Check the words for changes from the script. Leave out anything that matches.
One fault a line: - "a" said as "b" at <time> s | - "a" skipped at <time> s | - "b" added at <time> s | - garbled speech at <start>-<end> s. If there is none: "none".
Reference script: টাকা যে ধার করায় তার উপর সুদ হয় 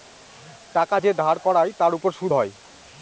none